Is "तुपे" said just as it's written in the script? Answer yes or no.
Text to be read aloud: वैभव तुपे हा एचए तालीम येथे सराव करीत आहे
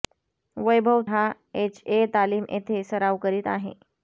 no